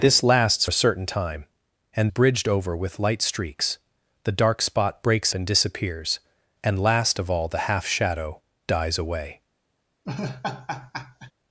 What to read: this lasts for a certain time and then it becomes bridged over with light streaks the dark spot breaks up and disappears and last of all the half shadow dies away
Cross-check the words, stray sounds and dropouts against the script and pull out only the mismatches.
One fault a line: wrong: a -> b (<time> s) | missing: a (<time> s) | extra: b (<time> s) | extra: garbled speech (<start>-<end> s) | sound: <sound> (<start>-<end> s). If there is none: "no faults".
missing: for (0.7 s)
missing: then it becomes (2.1 s)
missing: up (5.3 s)
sound: laugh (10.1-11.3 s)